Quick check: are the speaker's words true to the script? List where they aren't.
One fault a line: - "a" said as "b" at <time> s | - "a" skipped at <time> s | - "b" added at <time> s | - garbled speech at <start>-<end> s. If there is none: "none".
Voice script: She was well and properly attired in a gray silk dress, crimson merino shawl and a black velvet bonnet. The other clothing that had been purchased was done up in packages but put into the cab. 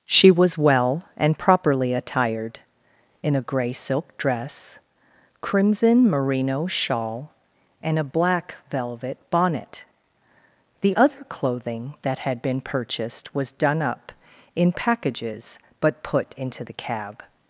none